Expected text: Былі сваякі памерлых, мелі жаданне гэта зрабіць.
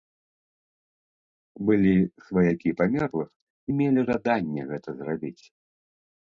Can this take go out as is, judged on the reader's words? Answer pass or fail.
pass